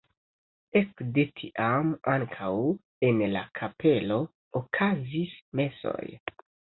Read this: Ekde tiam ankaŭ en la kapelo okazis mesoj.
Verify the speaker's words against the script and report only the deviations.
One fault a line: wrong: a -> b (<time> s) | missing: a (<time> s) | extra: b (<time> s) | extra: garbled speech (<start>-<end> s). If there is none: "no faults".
no faults